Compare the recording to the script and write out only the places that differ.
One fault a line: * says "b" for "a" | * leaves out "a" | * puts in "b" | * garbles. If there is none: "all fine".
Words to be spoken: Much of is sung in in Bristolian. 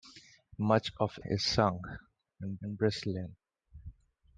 all fine